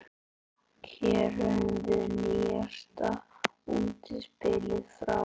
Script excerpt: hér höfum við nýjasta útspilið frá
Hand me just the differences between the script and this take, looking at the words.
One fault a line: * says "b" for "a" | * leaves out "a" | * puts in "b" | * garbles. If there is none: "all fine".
all fine